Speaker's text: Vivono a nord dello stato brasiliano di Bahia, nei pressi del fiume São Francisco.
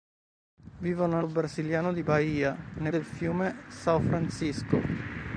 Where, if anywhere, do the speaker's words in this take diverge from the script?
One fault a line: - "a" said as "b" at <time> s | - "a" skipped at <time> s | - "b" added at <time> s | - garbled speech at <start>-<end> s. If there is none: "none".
- "nord dello stato" skipped at 1.2 s
- "pressi" skipped at 2.9 s